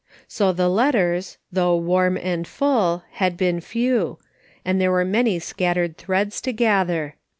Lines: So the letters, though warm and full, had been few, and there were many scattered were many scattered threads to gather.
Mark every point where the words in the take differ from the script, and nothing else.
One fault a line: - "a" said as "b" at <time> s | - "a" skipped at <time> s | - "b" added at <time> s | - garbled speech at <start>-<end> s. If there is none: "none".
- "were many scattered" skipped at 6.0 s